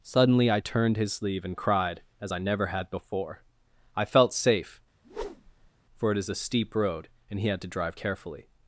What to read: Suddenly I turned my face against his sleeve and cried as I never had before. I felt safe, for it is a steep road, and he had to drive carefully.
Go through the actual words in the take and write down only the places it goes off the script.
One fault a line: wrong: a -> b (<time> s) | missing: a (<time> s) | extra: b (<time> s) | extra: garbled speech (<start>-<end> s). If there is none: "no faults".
missing: my face against (1.0 s)